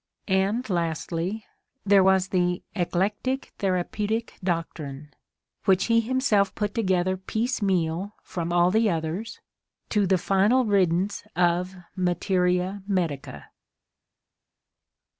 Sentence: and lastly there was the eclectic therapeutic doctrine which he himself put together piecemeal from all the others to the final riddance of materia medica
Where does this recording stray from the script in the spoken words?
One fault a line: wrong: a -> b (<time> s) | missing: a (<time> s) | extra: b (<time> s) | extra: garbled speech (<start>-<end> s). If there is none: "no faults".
no faults